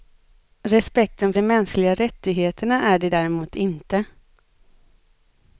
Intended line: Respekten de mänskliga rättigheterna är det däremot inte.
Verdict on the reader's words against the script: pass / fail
pass